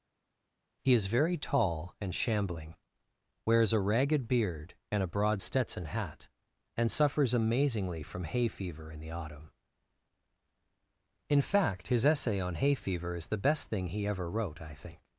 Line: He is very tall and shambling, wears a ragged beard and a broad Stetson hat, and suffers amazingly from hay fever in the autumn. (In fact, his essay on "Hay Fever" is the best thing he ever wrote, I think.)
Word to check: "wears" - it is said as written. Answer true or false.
true